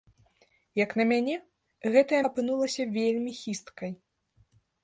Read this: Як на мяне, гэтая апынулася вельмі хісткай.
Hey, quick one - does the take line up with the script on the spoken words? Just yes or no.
yes